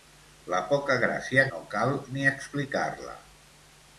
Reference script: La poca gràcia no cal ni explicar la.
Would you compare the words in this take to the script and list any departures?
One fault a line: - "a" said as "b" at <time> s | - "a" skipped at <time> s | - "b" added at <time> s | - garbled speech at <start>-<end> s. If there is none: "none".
none